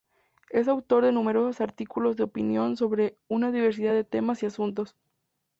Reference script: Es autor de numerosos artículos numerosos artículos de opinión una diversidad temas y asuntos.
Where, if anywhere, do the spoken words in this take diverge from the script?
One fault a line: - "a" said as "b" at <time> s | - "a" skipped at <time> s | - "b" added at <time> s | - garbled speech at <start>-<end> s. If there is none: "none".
- "numerosos artículos" skipped at 2.1 s
- "sobre" added at 2.8 s
- "de" added at 3.9 s